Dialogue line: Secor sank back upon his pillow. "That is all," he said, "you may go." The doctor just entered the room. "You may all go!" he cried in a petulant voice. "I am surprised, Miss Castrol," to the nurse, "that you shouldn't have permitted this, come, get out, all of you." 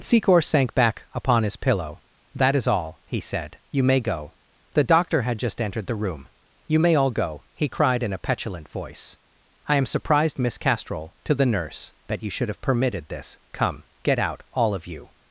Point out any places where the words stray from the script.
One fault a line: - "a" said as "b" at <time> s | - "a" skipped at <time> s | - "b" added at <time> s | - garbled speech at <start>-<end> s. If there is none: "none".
- "had" added at 5.2 s
- "shouldn't" said as "should" at 12.3 s